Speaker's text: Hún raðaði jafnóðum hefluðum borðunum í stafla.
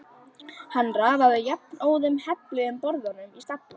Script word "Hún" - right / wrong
wrong